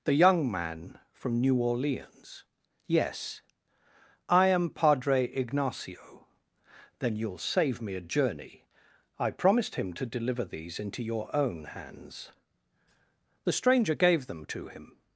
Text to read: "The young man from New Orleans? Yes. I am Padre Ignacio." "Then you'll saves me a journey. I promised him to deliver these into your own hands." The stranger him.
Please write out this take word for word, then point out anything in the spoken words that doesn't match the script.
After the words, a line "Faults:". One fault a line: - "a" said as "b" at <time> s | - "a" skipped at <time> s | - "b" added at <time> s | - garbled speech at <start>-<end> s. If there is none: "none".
"The young man from New Orleans? Yes. I am Padre Ignacio." "Then you'll save me a journey. I promised him to deliver these into your own hands." The stranger gave them to him.
Faults:
- "saves" said as "save" at 7.4 s
- "gave them to" added at 13.9 s